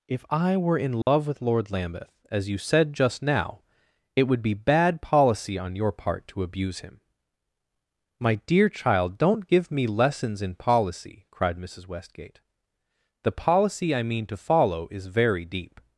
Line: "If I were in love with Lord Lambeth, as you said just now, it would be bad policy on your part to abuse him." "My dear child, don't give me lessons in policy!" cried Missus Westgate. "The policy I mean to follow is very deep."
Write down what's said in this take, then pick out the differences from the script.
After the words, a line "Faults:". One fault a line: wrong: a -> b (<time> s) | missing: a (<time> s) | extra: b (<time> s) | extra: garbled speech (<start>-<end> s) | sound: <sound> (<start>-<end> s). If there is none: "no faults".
"If I were in love with Lord Lambeth, as you said just now, it would be bad policy on your part to abuse him." "My dear child, don't give me lessons in policy!" cried Missus Westgate. "The policy I mean to follow is very deep."
Faults:
sound: dropout (1.0-1.1 s)